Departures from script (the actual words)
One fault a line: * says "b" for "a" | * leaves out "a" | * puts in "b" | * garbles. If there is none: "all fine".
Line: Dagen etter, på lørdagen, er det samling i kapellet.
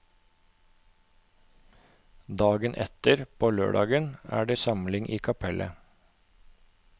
all fine